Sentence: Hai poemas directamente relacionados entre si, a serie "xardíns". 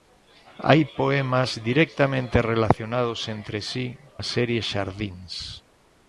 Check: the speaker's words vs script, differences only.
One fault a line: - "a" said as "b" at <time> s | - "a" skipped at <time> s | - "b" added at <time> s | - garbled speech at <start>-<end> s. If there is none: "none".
none